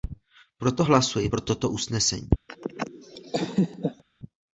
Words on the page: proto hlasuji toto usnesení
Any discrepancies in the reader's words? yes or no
yes